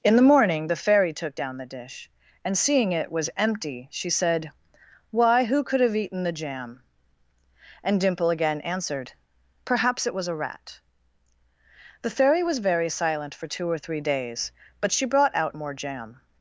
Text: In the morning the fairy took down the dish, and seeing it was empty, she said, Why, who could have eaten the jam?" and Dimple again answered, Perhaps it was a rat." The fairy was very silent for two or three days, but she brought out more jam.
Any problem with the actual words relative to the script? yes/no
no